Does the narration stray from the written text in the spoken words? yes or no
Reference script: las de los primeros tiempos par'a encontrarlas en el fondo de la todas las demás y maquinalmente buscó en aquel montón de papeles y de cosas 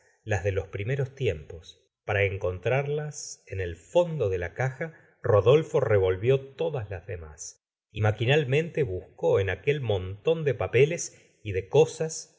yes